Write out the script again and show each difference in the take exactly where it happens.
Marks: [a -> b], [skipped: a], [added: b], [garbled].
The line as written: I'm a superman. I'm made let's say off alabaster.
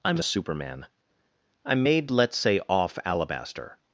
I'm a superman. I'm made let's say off alabaster.